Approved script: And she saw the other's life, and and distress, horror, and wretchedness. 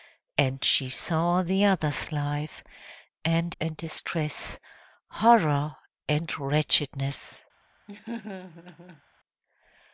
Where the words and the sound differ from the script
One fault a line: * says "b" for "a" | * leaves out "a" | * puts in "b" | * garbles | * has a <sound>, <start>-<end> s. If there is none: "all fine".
* has a laugh, 7.9-9.0 s